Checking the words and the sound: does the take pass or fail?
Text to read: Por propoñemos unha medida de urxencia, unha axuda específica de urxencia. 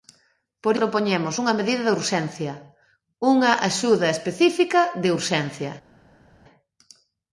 pass